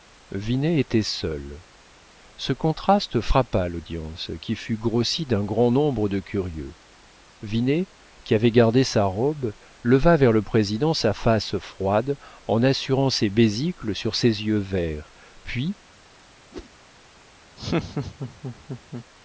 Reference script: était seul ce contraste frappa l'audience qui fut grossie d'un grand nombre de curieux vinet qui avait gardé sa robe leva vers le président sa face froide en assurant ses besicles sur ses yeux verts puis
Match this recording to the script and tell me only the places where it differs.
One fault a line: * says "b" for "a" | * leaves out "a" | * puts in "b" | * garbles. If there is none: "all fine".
all fine